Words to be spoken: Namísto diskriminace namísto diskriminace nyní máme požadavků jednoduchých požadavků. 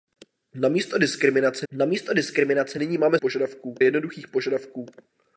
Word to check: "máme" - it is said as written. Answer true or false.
true